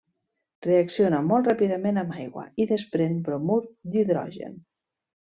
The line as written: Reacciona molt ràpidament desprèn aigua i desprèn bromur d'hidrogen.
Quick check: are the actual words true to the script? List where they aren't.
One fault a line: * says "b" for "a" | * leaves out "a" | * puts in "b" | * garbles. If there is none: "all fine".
* says "amb" for "desprèn"